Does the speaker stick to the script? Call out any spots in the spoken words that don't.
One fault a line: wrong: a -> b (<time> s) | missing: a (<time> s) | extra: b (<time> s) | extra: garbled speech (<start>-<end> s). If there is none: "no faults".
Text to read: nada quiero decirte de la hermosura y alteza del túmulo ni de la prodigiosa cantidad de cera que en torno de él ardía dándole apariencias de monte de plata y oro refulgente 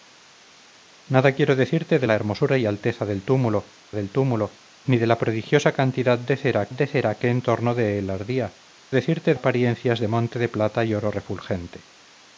extra: del túmulo (3.9 s)
extra: de cera (6.7 s)
wrong: dándole -> decirte (8.9 s)